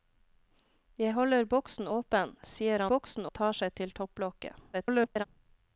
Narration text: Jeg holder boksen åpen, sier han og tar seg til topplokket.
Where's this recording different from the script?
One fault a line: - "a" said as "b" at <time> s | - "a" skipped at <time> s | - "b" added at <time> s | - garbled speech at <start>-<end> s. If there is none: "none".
- "han" said as "boksen" at 2.9 s
- garbled speech at 4.7-5.2 s